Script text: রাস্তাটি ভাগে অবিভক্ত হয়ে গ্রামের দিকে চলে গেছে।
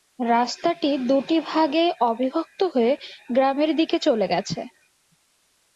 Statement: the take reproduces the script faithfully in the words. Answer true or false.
false